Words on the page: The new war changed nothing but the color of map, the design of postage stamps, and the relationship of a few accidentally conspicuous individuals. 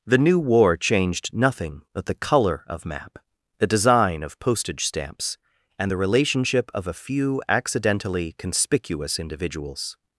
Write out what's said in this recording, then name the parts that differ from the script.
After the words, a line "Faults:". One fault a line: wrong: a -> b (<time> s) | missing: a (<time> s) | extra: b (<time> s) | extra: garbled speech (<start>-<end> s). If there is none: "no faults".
The new war changed nothing but the color of map, the design of postage stamps, and the relationship of a few accidentally conspicuous individuals.
Faults:
no faults